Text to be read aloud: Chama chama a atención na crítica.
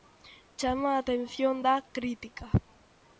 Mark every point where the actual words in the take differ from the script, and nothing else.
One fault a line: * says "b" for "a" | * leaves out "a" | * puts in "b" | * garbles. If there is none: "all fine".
* leaves out "chama"
* says "da" for "na"